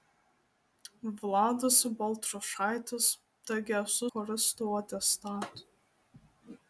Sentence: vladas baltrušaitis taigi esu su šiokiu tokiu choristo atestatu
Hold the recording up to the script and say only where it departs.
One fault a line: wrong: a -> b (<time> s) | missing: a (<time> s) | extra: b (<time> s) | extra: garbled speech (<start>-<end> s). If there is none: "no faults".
missing: su šiokiu tokiu (4.1 s)